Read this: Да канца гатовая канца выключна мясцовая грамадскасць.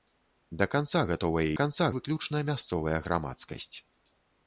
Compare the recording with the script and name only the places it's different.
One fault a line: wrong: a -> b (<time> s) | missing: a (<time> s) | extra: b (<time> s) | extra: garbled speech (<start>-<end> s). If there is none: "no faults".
no faults